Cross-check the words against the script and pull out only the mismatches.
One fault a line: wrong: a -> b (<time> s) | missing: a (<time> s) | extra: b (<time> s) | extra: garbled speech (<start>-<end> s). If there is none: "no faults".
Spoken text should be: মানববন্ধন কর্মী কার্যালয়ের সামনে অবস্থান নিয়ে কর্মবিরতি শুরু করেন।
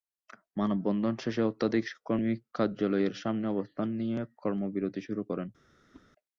extra: শেষে শতাধিক (1.2 s)